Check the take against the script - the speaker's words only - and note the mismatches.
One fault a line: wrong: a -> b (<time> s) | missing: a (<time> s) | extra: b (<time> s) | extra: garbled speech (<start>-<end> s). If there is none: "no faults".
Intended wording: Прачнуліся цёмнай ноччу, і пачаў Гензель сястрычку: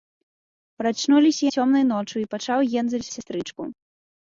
no faults